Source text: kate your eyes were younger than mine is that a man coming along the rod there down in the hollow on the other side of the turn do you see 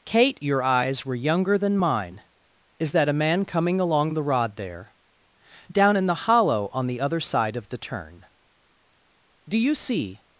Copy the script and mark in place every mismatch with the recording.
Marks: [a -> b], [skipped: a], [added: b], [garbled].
kate your eyes were younger than mine is that a man coming along the rod there down in the hollow on the other side of the turn do you see